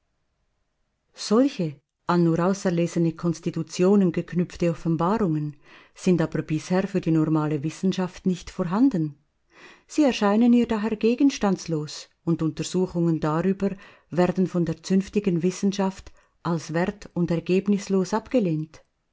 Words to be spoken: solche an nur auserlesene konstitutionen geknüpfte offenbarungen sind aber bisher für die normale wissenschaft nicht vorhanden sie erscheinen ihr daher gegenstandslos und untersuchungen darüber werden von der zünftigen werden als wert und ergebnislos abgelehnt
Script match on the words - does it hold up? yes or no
no